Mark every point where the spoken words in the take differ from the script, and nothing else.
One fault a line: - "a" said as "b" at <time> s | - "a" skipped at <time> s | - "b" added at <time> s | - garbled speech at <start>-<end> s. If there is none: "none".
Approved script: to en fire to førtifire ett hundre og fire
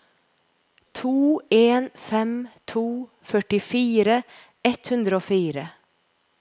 - "fire" said as "fem" at 1.9 s